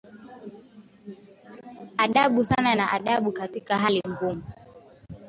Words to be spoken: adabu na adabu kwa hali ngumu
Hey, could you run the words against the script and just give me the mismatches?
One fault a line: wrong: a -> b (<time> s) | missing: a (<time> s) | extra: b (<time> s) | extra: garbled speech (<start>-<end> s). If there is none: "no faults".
extra: sana (2.5 s)
wrong: kwa -> katika (3.3 s)